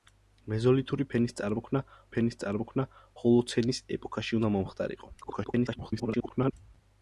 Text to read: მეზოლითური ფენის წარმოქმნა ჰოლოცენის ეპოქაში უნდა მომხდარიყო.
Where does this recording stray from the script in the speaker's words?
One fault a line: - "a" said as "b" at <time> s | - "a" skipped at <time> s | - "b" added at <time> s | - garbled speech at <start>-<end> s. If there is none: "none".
- "ფენის წარმოქმნა" added at 2.1 s
- garbled speech at 5.2-6.5 s